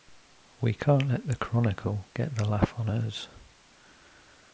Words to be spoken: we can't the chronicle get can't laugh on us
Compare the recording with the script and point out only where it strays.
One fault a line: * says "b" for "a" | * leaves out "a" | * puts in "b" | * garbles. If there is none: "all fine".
* puts in "let"
* says "the" for "can't"